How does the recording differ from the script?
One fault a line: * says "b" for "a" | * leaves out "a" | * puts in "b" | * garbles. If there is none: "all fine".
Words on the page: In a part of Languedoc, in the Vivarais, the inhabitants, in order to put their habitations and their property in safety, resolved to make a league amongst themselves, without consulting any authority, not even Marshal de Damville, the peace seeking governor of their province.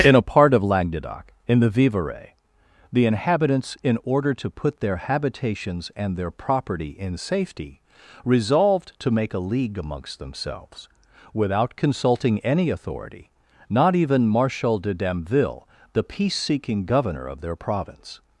all fine